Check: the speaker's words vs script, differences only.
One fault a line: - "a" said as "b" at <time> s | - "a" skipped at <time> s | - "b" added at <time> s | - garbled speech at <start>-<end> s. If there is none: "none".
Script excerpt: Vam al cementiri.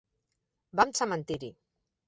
none